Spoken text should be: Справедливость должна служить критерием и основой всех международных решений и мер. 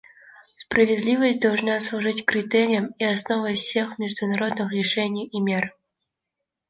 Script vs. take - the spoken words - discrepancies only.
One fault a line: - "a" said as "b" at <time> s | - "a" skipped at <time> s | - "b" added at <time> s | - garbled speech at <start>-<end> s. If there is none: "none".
none